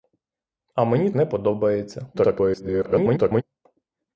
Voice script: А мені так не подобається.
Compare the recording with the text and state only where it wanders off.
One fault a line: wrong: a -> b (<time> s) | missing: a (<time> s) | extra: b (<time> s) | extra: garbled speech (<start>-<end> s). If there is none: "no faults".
missing: так (1.1 s)
extra: garbled speech (2.1-3.4 s)